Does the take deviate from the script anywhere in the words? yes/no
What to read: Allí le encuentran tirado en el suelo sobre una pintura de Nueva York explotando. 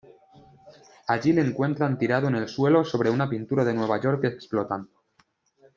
no